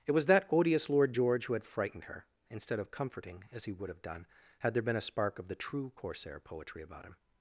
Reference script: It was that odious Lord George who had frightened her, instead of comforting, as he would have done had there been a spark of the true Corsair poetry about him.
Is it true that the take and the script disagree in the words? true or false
false